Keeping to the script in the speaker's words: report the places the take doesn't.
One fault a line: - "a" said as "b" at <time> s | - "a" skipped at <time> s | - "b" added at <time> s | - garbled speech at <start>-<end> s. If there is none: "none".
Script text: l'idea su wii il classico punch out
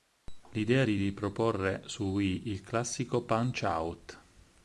- "di riproporre" added at 0.8 s